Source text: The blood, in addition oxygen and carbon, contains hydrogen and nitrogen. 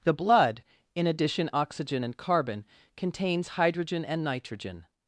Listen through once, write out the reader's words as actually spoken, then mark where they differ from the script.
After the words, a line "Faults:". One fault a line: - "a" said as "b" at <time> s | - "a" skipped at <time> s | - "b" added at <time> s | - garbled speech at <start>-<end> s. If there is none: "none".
The blood, in addition oxygen and carbon, contains hydrogen and nitrogen.
Faults:
none